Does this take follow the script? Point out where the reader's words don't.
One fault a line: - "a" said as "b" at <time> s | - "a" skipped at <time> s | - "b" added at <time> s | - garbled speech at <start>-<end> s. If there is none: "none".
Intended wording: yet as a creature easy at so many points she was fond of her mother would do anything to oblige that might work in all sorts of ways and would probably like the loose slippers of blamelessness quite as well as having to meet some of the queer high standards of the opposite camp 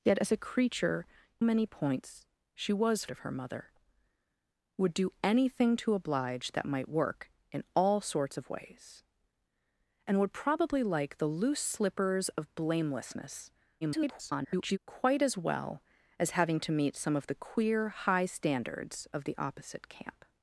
- "easy at so" skipped at 1.1 s
- "fond" skipped at 3.1 s
- garbled speech at 13.8-14.8 s